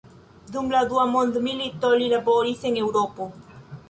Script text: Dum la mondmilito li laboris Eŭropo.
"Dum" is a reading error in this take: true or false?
false